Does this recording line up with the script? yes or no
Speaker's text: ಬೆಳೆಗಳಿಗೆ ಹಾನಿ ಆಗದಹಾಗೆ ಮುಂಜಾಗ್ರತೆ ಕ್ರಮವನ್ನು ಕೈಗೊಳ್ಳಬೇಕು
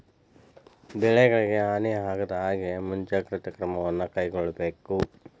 yes